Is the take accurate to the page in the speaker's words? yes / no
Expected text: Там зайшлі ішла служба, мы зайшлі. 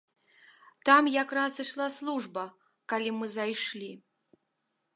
no